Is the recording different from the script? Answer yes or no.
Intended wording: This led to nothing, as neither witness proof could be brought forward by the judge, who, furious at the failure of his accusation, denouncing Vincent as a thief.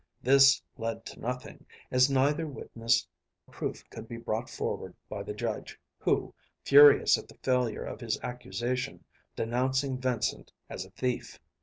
no